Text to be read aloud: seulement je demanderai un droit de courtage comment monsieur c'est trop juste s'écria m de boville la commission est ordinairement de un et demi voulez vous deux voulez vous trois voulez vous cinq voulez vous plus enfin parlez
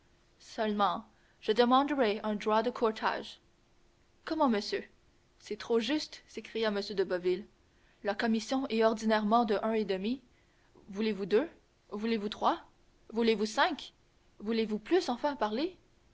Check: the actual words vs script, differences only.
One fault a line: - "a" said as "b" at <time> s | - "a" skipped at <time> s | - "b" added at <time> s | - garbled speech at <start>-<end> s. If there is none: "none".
none